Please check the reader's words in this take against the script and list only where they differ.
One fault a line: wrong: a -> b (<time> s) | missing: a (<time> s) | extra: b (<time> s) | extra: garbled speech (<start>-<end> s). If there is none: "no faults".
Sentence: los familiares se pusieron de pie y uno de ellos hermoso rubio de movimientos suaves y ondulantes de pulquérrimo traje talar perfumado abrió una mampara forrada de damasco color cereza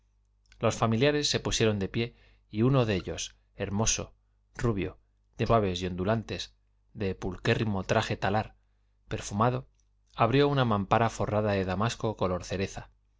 missing: movimientos (5.5 s)